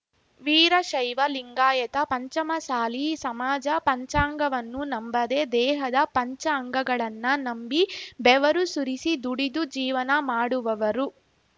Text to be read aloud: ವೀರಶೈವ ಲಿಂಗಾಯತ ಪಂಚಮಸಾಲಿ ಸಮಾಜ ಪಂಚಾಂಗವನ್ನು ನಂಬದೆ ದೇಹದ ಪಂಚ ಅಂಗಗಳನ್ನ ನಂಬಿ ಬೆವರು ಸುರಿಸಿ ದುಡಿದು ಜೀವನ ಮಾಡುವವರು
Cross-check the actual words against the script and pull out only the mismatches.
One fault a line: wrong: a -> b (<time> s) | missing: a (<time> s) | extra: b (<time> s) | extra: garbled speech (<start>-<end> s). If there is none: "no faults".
no faults